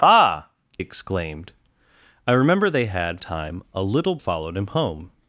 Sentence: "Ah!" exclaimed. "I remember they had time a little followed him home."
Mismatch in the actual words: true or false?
false